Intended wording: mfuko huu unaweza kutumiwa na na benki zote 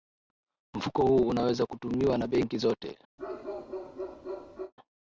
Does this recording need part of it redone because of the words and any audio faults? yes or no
yes